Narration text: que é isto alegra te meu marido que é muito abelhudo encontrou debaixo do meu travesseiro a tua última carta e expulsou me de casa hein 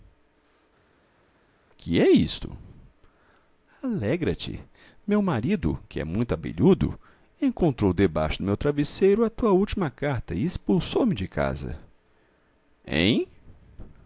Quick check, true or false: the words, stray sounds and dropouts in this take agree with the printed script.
true